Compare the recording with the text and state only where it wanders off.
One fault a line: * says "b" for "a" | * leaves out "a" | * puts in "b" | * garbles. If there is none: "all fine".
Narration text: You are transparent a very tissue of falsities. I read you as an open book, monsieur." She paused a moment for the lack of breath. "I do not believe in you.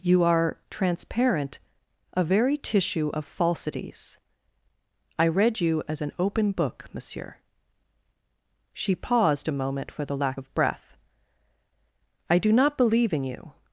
all fine